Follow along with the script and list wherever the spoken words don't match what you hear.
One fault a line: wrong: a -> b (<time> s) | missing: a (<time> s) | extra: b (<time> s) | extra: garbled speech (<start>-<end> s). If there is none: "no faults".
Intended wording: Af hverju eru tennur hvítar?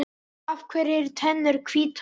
no faults